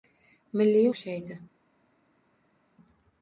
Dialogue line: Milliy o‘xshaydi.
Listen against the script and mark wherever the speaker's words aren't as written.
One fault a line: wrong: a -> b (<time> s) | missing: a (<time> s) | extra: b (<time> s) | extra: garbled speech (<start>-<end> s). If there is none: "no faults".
no faults